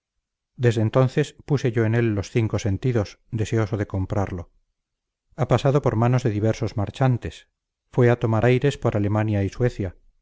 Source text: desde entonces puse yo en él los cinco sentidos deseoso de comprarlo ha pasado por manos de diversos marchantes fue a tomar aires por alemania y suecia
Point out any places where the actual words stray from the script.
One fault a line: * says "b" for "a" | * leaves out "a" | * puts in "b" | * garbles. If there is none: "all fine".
all fine